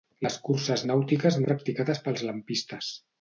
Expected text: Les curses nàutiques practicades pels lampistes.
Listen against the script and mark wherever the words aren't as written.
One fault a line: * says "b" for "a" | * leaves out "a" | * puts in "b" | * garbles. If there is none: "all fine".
all fine